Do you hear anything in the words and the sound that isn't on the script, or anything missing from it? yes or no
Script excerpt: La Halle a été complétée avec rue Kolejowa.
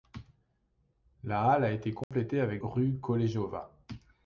yes